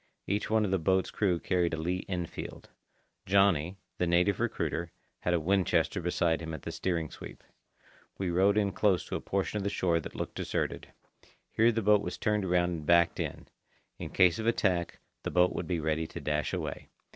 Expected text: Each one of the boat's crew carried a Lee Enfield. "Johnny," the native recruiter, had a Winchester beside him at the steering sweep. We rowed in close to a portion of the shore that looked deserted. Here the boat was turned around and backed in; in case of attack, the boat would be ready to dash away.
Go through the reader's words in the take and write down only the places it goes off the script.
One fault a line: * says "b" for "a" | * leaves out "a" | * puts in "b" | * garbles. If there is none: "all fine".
all fine